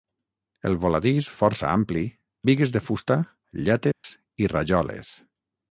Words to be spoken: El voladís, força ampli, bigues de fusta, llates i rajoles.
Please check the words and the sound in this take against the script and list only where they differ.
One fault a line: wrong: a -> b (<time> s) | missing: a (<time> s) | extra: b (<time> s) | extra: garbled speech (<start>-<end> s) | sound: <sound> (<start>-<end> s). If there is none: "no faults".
sound: dropout (3.9-4.0 s)